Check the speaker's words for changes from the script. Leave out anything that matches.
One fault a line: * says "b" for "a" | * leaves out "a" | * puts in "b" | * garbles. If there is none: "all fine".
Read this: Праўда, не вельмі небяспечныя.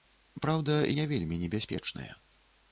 all fine